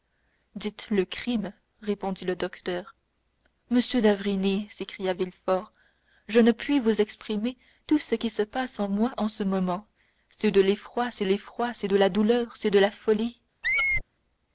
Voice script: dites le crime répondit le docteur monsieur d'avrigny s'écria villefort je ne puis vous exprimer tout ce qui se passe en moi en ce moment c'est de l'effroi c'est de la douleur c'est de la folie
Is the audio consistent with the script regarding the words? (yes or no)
no